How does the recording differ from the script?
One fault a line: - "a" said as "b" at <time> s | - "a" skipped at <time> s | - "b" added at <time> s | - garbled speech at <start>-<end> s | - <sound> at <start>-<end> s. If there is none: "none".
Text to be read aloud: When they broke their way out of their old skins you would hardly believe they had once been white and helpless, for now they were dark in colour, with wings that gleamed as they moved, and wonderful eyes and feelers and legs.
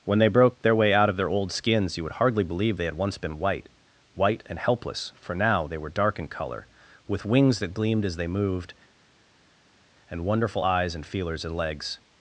- "white" added at 4.1 s